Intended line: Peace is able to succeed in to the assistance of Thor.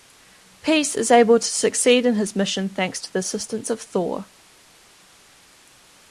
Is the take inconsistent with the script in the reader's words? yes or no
yes